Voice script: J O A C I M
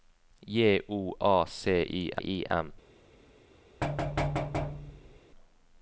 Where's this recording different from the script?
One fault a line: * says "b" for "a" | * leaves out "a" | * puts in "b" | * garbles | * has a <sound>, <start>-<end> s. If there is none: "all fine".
* puts in "I"
* has a thud, 3.8-5.2 s